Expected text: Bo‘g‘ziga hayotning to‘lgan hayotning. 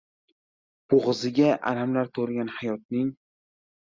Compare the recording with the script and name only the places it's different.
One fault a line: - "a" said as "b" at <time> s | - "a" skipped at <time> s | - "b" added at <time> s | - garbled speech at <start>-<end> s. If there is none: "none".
- "hayotning" said as "alamlar" at 1.7 s